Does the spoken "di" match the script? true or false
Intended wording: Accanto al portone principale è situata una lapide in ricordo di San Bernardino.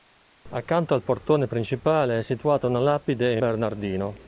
false